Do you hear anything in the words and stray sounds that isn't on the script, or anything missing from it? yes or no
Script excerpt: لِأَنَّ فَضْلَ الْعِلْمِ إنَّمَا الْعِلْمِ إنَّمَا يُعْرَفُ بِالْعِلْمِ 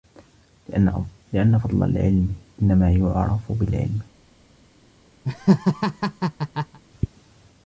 yes